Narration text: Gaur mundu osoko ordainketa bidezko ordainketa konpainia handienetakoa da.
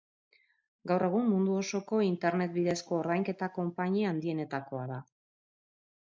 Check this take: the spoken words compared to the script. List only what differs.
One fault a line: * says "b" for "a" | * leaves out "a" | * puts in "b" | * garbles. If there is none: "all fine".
* puts in "egun"
* says "internet" for "ordainketa"